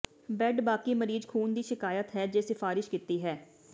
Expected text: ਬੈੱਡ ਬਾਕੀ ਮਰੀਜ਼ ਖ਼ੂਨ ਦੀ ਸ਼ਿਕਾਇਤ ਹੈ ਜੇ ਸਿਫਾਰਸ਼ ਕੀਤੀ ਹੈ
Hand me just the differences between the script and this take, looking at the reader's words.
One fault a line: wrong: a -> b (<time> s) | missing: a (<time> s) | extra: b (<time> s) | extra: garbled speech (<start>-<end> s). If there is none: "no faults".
no faults